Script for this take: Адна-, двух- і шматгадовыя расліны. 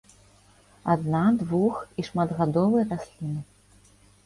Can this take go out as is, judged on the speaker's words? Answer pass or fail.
pass